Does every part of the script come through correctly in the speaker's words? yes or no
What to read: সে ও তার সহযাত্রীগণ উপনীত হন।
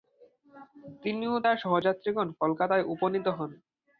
no